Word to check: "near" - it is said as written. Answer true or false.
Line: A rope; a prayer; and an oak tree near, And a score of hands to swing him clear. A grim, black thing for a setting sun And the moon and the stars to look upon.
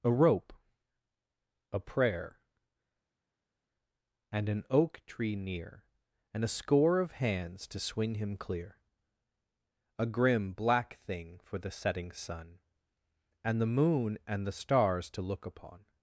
true